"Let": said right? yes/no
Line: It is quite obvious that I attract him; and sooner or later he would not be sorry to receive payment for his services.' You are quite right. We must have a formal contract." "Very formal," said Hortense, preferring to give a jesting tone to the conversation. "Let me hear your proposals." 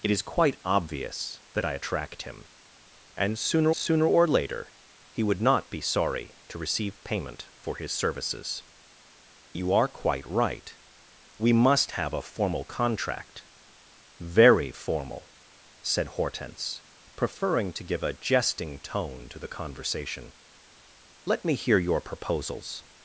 yes